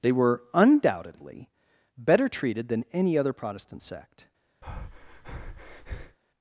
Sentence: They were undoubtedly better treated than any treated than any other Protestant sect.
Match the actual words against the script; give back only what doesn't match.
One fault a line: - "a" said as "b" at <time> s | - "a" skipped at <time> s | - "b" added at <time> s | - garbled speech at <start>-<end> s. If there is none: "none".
- "treated than any" skipped at 3.2 s